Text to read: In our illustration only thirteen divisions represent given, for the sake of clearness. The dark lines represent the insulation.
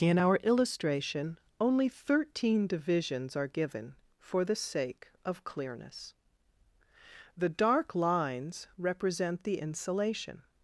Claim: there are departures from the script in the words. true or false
true